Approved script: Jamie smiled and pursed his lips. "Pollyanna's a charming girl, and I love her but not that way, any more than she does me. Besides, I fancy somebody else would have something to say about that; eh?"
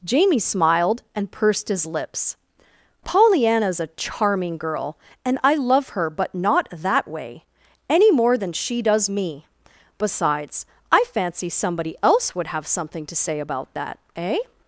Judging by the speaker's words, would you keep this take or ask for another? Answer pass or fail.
pass